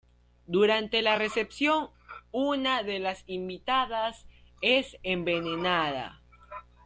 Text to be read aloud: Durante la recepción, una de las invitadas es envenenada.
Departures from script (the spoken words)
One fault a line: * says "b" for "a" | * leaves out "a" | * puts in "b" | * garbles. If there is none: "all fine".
all fine